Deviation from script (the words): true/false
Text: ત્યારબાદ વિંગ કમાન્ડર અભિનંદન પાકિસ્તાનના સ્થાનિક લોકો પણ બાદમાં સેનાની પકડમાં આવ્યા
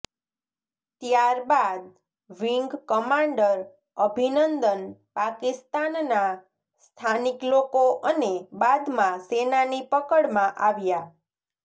true